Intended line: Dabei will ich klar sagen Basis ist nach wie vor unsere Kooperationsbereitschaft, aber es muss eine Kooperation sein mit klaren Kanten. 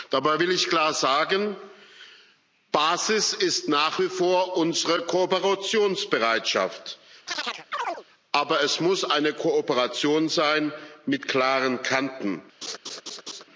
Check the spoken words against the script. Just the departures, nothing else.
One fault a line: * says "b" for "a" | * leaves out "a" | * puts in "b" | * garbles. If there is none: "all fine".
all fine